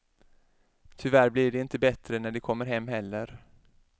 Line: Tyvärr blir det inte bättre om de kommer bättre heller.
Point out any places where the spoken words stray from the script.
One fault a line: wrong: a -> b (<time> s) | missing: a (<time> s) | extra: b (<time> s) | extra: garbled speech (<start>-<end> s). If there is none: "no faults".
wrong: om -> när (2.2 s)
wrong: bättre -> hem (2.6 s)